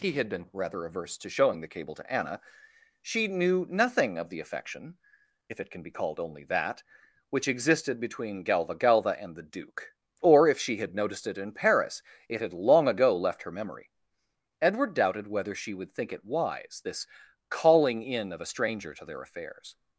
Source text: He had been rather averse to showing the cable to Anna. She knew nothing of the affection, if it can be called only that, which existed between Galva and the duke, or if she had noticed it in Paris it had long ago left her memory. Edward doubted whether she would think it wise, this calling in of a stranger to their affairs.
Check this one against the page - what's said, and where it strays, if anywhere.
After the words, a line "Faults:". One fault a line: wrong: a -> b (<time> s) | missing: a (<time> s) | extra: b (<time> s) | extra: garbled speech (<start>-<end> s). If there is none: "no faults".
He had been rather averse to showing the cable to Anna. She knew nothing of the affection, if it can be called only that, which existed between Galva Galva and the duke, or if she had noticed it in Paris it had long ago left her memory. Edward doubted whether she would think it wise, this calling in of a stranger to their affairs.
Faults:
extra: Galva (8.8 s)